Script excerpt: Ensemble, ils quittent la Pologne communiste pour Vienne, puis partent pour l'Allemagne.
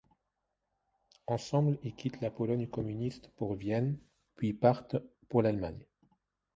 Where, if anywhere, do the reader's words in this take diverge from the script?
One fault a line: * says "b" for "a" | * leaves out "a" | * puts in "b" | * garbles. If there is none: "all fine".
all fine